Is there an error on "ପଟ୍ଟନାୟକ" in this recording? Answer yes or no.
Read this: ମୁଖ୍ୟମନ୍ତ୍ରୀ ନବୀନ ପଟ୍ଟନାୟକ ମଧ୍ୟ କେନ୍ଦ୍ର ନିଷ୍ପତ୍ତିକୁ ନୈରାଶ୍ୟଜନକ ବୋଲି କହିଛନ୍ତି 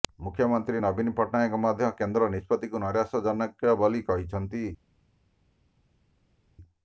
no